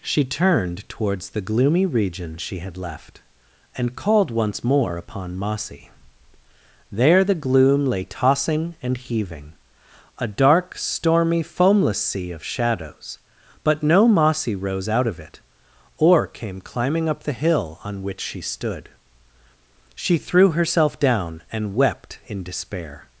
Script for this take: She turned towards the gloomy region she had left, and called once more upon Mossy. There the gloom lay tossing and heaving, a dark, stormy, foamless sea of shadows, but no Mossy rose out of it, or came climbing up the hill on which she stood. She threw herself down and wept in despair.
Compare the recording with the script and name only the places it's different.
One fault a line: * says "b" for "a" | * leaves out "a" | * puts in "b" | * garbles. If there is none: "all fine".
all fine